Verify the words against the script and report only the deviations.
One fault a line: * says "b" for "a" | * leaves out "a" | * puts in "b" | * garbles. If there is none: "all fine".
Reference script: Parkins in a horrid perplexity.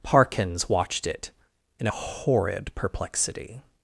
* puts in "watched it"